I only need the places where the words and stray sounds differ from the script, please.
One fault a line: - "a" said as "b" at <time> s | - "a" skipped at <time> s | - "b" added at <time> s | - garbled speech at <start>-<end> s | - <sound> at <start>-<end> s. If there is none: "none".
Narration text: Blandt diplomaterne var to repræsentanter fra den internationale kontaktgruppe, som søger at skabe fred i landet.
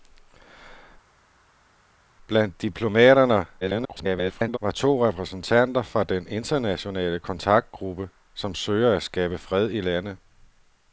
- garbled speech at 3.6-4.6 s